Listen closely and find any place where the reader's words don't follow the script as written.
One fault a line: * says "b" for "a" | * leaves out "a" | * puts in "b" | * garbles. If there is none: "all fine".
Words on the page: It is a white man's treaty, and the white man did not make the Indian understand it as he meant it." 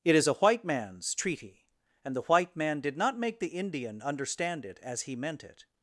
all fine